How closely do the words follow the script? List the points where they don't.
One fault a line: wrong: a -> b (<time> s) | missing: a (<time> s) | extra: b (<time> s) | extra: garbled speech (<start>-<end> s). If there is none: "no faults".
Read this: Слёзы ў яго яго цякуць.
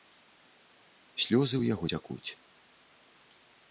missing: яго (1.9 s)